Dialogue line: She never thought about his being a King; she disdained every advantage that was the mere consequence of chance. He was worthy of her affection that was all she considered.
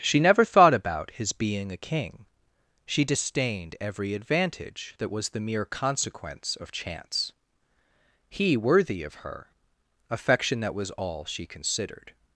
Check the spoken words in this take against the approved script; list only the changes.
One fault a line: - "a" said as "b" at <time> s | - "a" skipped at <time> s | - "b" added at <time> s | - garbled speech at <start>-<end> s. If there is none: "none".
- "was" skipped at 8.6 s